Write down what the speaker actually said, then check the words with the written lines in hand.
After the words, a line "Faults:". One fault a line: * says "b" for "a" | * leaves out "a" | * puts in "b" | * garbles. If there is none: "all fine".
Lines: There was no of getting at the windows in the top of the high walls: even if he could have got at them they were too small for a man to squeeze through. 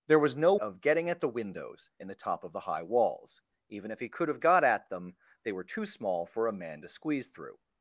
There was no of getting at the windows in the top of the high walls: even if he could have got at them they were too small for a man to squeeze through.
Faults:
all fine